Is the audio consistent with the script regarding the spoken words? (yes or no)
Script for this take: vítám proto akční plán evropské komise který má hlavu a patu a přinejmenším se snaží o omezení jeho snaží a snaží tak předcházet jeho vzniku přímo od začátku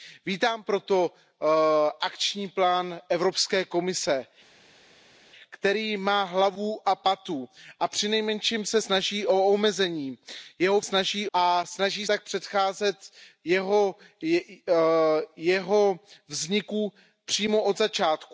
yes